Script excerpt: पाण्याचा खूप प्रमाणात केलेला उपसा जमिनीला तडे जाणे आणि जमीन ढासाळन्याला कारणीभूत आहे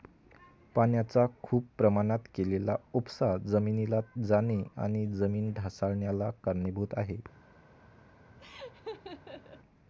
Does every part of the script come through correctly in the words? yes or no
no